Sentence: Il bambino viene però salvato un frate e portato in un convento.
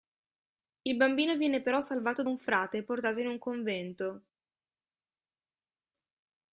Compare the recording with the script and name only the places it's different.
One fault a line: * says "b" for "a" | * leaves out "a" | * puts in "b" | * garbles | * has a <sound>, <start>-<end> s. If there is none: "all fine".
all fine